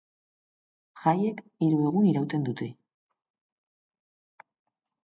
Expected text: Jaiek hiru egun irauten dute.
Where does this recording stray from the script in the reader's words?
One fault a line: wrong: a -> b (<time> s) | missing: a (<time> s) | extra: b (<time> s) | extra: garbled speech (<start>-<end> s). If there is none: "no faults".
no faults